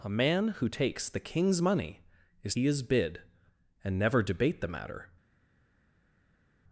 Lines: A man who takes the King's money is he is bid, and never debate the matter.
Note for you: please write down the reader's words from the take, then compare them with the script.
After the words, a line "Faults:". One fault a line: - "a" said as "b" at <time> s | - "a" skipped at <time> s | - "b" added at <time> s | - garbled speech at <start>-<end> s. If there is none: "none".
A man who takes the King's money is he is bid, and never debate the matter.
Faults:
none